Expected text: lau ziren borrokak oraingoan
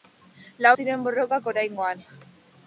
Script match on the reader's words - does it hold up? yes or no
yes